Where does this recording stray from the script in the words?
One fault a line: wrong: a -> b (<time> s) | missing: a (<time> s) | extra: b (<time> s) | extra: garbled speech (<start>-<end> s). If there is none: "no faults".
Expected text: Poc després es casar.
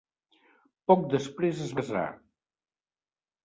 no faults